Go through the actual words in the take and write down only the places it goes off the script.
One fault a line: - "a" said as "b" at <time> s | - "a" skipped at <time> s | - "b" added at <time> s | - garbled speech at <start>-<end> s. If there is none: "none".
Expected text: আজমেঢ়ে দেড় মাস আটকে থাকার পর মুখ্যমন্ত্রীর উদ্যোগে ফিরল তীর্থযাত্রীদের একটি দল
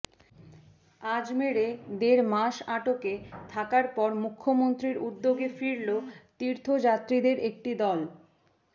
none